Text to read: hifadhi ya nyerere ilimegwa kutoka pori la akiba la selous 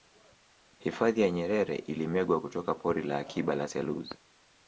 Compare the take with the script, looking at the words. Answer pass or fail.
pass